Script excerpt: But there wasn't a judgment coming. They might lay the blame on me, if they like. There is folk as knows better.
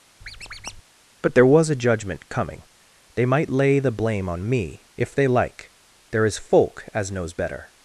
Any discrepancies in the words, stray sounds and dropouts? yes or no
yes